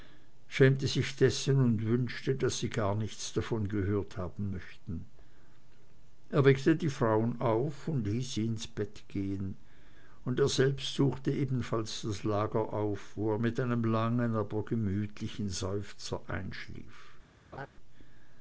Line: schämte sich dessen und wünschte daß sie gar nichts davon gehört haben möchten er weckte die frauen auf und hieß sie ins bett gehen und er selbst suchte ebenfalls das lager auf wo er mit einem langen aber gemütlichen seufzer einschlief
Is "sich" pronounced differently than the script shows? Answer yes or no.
no